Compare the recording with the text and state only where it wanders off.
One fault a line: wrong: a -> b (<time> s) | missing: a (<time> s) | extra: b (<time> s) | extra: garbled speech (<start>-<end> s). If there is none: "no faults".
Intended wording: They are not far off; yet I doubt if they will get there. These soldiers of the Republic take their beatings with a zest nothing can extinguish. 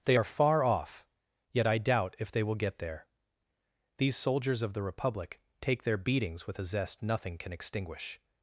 missing: not (0.2 s)